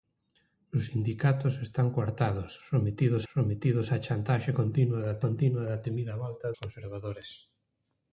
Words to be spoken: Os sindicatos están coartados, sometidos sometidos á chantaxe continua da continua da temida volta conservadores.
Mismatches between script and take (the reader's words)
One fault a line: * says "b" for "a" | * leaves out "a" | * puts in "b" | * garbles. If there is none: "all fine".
all fine